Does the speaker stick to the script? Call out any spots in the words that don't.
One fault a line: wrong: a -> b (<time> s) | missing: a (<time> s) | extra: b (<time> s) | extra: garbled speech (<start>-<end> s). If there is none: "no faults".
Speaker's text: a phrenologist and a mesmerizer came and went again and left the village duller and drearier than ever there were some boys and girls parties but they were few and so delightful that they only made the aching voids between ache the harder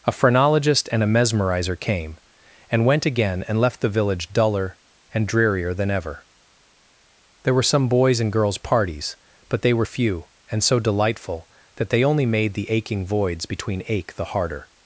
no faults